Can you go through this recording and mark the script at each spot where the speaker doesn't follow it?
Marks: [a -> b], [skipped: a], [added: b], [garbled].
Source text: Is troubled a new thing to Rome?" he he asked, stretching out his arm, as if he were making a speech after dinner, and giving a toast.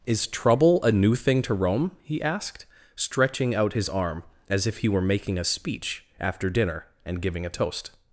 Is [troubled -> trouble] a new thing to Rome?" he [skipped: he] asked, stretching out his arm, as if he were making a speech after dinner, and giving a toast.